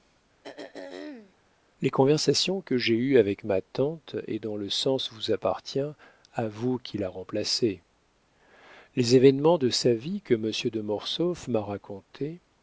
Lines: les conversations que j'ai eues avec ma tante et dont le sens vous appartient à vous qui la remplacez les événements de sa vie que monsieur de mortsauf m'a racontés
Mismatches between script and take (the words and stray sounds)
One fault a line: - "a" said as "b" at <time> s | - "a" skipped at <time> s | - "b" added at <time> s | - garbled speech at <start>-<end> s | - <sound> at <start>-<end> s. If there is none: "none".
- throat clearing at 0.4-1.4 s